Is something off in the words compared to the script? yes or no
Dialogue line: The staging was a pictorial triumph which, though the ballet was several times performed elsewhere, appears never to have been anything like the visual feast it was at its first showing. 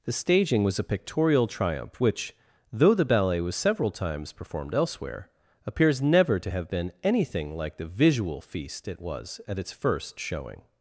no